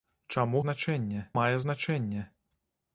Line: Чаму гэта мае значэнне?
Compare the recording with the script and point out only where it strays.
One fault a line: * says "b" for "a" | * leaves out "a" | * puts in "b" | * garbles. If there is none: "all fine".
* says "значэнне" for "гэта"